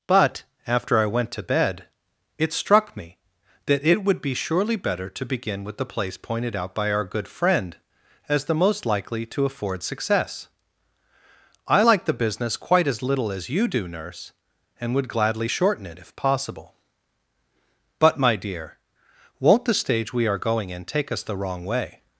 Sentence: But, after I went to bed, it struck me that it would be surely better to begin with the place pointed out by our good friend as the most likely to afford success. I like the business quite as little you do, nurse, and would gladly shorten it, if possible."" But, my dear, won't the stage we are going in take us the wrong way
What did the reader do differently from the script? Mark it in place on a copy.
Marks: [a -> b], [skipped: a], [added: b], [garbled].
But, after I went to bed, it struck me that it would be surely better to begin with the place pointed out by our good friend as the most likely to afford success. I like the business quite as little [added: as] you do, nurse, and would gladly shorten it, if possible."" But, my dear, won't the stage we are going in take us the wrong way